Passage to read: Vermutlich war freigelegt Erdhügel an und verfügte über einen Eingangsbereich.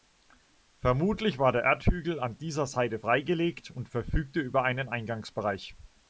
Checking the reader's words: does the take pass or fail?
fail